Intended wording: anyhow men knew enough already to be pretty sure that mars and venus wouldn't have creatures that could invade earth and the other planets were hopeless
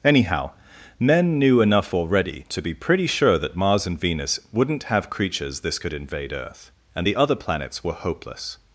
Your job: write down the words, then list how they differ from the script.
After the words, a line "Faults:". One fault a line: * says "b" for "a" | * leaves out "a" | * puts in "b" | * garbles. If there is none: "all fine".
anyhow men knew enough already to be pretty sure that mars and venus wouldn't have creatures this could invade earth and the other planets were hopeless
Faults:
* says "this" for "that"